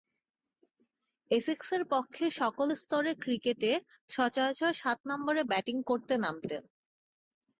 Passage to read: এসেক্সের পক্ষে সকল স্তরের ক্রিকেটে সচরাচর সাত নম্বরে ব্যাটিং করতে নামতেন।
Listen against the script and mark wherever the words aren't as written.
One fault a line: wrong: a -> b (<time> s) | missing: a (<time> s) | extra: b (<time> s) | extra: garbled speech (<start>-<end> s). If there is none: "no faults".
no faults